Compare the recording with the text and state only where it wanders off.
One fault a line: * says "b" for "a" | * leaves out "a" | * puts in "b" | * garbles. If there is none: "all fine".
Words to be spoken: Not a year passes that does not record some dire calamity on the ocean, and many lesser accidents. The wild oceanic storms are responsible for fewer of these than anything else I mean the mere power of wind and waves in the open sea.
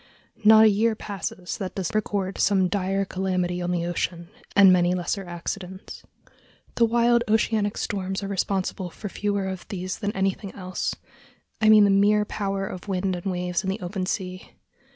* leaves out "not"